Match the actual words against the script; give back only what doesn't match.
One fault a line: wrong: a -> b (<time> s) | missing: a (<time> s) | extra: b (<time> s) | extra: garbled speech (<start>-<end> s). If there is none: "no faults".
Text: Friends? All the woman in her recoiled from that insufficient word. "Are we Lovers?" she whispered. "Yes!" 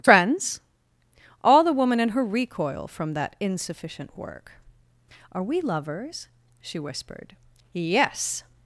wrong: recoiled -> recoil (2.2 s)
wrong: word -> work (4.2 s)